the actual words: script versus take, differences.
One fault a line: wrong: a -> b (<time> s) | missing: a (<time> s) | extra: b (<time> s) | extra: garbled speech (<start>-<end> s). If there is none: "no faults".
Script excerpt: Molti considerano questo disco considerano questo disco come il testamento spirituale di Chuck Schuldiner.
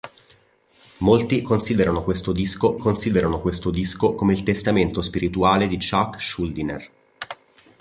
no faults